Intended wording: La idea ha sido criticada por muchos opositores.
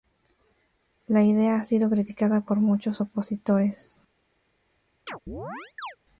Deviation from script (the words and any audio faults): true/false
true